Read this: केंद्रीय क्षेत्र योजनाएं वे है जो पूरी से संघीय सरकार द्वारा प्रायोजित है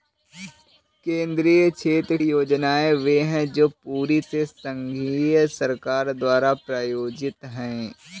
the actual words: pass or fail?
pass